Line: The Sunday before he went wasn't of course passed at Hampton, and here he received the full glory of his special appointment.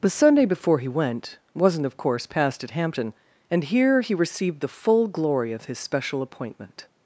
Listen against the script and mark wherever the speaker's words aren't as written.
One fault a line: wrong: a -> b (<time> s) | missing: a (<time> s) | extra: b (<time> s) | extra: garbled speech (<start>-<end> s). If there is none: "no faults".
no faults